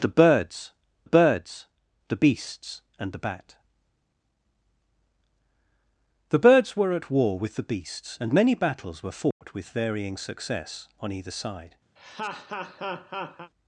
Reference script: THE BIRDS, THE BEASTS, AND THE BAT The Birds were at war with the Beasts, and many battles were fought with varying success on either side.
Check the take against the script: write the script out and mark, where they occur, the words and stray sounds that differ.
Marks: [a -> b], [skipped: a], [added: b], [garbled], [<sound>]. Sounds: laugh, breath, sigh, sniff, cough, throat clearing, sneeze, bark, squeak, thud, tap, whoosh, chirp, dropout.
THE BIRDS, [added: BIRDS] THE BEASTS, AND THE BAT The Birds were at war with the Beasts, and many battles were fought [dropout] with varying success on either side. [laugh]